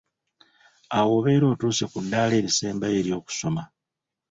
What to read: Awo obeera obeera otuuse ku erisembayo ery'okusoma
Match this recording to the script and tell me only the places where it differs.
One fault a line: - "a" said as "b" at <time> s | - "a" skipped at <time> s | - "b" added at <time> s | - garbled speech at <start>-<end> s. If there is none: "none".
- "obeera" skipped at 1.4 s
- "ddaala" added at 2.0 s